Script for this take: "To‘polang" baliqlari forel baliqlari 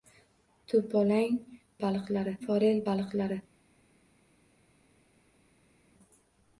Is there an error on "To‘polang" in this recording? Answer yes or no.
no